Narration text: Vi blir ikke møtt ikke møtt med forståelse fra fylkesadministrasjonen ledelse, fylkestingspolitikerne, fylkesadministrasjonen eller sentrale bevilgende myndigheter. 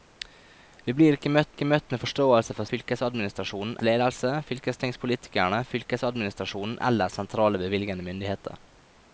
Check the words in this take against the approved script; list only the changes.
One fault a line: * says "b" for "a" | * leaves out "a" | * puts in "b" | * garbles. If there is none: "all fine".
all fine